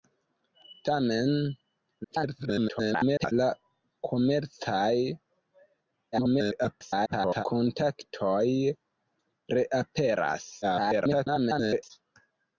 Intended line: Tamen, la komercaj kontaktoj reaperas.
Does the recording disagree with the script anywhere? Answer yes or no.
yes